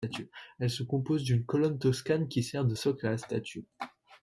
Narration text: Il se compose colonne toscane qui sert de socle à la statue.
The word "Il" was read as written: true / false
false